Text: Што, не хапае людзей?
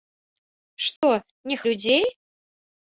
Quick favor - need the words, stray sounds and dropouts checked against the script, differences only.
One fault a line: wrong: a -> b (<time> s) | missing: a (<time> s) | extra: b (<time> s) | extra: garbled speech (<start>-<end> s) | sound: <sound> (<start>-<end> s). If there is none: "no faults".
sound: dropout (1.0-1.0 s)
missing: хапае (1.6 s)